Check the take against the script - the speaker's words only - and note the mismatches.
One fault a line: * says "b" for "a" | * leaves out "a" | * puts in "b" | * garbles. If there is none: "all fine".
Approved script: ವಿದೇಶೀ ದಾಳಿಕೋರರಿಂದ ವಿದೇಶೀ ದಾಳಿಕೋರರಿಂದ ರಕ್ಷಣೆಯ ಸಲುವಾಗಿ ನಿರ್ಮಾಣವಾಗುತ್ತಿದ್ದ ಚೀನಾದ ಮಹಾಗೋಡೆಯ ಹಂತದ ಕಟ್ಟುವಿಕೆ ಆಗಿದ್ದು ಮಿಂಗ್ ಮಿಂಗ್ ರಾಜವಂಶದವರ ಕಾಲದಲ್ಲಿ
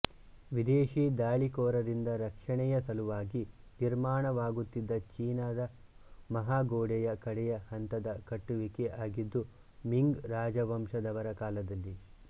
* leaves out "ವಿದೇಶೀ ದಾಳಿಕೋರರಿಂದ"
* puts in "ಕಡೆಯ"
* leaves out "ಮಿಂಗ್"